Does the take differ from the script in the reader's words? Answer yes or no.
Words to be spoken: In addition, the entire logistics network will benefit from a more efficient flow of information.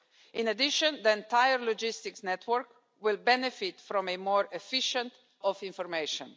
yes